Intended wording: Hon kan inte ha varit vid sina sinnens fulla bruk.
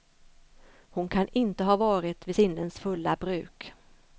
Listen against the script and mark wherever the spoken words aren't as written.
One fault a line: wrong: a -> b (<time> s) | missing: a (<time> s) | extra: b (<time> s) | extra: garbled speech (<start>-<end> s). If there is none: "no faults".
missing: sina (2.4 s)